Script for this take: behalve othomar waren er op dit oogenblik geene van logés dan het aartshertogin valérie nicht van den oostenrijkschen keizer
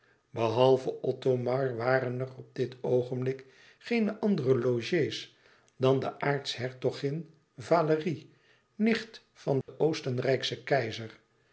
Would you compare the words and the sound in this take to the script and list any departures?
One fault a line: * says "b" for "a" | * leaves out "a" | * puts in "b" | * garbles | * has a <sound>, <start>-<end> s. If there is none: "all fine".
* says "andere" for "van"
* says "de" for "het"
* has a dropout, 9.6-9.7 s